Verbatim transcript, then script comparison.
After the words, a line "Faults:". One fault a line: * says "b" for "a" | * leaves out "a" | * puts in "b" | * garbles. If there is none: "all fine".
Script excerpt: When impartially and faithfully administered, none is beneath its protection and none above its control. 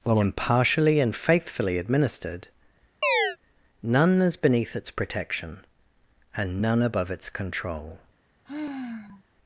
While impartially and faithfully administered, none is beneath its protection and none above its control.
Faults:
* says "While" for "When"